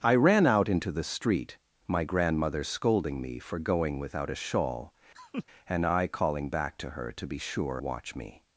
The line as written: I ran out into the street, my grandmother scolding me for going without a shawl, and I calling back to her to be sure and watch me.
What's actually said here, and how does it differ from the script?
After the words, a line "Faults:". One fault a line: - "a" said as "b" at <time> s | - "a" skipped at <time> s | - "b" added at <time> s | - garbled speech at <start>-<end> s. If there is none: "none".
I ran out into the street, my grandmother scolding me for going without a shawl, and I calling back to her to be sure watch me.
Faults:
- "and" skipped at 7.8 s